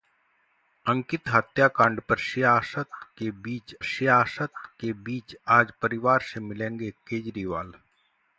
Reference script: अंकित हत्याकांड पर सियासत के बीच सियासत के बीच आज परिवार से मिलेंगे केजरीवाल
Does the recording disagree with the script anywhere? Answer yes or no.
no